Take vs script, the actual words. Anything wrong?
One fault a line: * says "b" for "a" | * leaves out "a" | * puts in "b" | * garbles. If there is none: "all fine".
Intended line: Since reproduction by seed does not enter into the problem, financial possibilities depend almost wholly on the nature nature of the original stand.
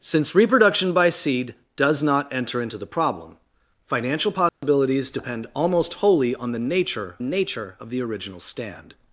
all fine